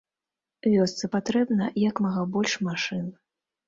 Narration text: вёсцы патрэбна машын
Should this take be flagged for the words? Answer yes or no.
yes